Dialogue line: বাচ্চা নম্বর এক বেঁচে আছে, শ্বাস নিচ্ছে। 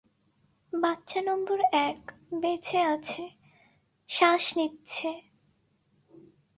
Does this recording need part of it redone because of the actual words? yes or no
no